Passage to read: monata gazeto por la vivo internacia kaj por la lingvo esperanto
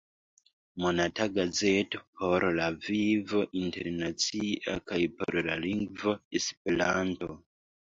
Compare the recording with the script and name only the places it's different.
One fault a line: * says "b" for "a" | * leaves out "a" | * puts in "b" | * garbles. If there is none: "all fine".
all fine